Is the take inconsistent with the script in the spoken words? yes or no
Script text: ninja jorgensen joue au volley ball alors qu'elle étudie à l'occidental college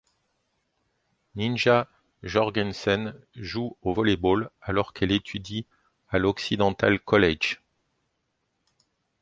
no